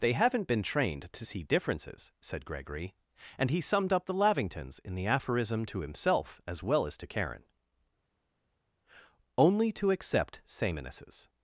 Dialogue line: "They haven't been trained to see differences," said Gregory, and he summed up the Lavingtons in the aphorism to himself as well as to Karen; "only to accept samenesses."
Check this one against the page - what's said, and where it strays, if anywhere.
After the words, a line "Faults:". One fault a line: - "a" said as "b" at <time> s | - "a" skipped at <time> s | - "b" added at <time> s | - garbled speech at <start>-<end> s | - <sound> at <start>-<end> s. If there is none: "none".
"They haven't been trained to see differences," said Gregory, and he summed up the Lavingtons in the aphorism to himself as well as to Karen; "only to accept samenesses."
Faults:
none